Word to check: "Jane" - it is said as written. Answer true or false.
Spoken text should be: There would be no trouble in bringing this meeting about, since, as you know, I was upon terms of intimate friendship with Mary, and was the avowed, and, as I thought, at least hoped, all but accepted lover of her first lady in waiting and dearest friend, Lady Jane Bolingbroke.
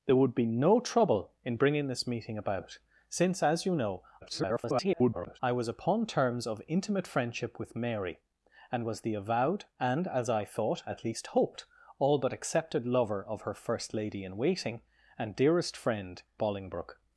false